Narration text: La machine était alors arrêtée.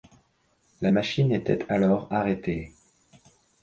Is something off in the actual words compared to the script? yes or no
no